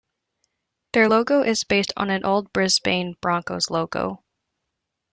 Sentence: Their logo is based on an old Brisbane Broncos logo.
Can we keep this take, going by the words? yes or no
yes